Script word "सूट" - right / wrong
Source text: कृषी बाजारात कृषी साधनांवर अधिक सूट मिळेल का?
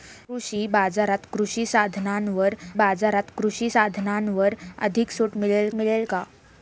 right